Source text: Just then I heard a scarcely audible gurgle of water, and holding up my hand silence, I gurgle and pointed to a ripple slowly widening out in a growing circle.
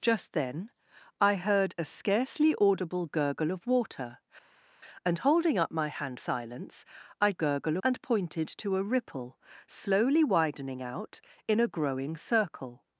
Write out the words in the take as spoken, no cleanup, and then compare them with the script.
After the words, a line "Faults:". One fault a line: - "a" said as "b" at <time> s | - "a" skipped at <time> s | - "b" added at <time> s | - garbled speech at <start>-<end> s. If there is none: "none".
Just then I heard a scarcely audible gurgle of water, and holding up my hand silence, I gurgle and pointed to a ripple slowly widening out in a growing circle.
Faults:
none